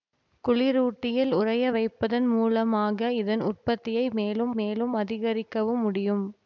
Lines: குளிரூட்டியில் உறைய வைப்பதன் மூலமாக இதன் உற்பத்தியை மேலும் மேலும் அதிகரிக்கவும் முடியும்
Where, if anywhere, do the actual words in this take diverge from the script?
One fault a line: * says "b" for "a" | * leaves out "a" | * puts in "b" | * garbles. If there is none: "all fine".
all fine